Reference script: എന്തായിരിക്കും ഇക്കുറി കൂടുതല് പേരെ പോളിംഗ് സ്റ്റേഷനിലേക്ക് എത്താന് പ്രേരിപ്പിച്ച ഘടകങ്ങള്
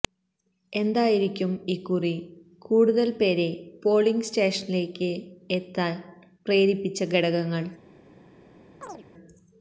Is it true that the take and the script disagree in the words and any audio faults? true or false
true